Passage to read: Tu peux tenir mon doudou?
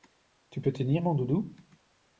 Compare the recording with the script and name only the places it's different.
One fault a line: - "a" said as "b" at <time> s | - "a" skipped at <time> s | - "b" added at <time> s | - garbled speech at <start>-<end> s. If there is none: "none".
none